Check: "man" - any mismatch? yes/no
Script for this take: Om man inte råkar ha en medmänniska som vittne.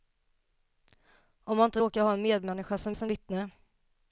no